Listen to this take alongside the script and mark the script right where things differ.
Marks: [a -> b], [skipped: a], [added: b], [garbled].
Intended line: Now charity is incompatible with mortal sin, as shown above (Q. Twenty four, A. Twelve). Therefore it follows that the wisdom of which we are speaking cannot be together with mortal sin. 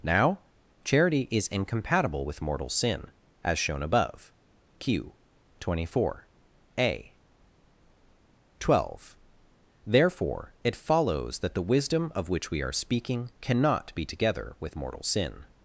Now charity is incompatible with mortal sin, as shown above (Q. Twenty four, A. Twelve). Therefore it follows that the wisdom of which we are speaking cannot be together with mortal sin.